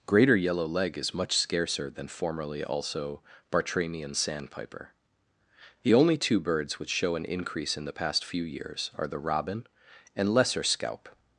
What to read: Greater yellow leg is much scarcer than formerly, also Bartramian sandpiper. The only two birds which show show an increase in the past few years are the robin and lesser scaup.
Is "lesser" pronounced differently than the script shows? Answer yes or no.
no